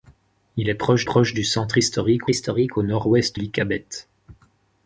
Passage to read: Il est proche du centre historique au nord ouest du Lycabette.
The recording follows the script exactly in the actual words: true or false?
false